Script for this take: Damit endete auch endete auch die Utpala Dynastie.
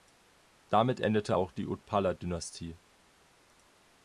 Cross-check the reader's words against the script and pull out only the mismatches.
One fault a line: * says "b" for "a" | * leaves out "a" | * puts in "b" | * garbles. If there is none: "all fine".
* leaves out "endete auch"